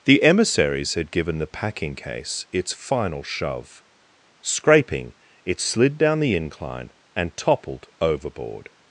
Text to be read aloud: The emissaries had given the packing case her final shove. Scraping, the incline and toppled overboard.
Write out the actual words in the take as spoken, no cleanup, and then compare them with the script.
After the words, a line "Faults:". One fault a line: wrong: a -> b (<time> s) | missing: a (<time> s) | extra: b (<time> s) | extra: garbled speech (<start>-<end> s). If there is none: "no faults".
The emissaries had given the packing case its final shove. Scraping, it slid down the incline and toppled overboard.
Faults:
wrong: her -> its (2.5 s)
extra: it slid down (5.5 s)